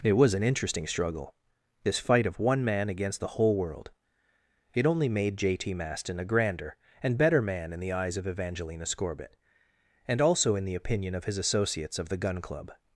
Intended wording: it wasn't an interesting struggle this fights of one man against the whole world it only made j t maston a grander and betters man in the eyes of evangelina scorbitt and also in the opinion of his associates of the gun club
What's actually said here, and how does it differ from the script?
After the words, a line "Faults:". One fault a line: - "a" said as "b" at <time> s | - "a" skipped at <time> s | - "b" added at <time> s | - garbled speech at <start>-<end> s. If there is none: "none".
it was an interesting struggle this fight of one man against the whole world it only made j t maston a grander and better man in the eyes of evangelina scorbitt and also in the opinion of his associates of the gun club
Faults:
- "wasn't" said as "was" at 0.1 s
- "fights" said as "fight" at 2.0 s
- "betters" said as "better" at 7.2 s